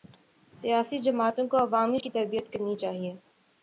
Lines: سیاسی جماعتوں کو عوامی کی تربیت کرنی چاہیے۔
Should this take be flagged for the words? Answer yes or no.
no